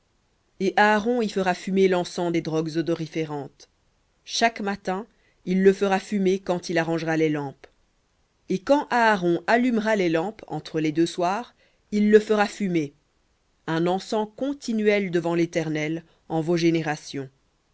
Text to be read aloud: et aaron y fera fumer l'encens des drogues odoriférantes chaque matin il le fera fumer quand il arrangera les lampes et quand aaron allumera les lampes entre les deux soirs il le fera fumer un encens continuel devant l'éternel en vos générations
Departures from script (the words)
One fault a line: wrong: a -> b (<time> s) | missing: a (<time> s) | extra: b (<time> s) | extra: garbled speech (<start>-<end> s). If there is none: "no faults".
no faults